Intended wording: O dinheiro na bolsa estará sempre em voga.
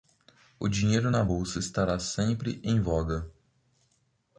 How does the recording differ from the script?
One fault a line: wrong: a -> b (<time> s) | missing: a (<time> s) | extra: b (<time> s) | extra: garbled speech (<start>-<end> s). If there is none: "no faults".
no faults